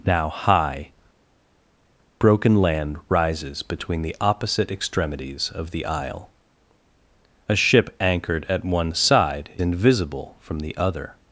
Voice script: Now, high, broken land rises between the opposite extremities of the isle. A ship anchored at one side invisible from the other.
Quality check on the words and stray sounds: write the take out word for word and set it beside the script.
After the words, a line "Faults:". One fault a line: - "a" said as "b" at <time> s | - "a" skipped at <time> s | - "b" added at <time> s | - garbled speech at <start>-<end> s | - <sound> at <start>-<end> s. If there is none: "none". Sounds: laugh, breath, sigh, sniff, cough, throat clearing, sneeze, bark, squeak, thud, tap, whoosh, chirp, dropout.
Now, high, broken land rises between the opposite extremities of the isle. A ship anchored at one side invisible from the other.
Faults:
none